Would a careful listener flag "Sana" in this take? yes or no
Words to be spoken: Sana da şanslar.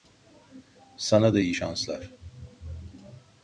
no